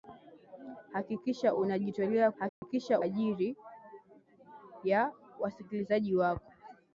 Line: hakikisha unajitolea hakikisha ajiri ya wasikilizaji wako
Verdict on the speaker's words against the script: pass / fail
pass